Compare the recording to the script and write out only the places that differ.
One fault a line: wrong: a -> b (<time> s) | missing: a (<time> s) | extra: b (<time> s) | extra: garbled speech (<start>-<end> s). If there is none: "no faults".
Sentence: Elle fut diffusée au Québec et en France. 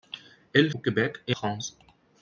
missing: fut diffusée (0.7 s)
missing: en (1.3 s)